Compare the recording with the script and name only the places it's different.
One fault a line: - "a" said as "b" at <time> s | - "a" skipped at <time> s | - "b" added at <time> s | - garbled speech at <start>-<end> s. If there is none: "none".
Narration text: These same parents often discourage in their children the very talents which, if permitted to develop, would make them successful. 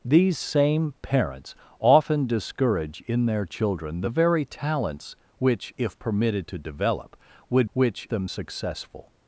- "make" said as "which" at 7.7 s